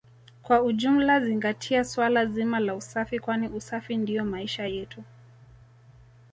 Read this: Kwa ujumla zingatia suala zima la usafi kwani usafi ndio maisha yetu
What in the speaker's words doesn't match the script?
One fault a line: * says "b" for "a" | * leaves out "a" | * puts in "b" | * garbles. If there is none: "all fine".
all fine